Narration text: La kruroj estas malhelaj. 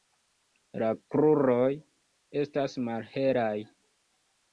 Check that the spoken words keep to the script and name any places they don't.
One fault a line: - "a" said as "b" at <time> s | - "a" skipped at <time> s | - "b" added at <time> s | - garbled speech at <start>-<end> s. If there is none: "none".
none